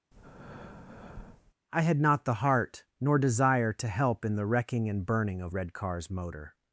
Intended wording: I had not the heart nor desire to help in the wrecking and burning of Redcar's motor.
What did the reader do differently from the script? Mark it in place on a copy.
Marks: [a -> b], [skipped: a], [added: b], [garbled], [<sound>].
[breath] I had not the heart nor desire to help in the wrecking and burning of Redcar's motor.